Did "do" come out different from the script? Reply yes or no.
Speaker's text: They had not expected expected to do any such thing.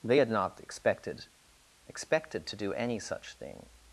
no